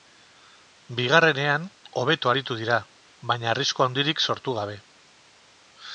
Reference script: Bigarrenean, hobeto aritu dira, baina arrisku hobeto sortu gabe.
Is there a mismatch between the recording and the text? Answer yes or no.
yes